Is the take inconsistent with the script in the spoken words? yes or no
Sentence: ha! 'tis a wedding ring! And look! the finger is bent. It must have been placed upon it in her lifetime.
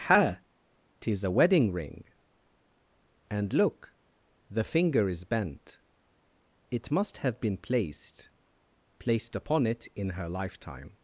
yes